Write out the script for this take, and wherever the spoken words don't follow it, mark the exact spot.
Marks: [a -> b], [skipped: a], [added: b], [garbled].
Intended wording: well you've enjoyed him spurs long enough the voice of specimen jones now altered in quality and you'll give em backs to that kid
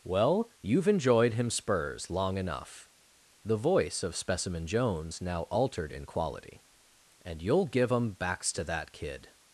well you've enjoyed him spurs long enough the voice of specimen jones now altered in quality and you'll give em backs to that kid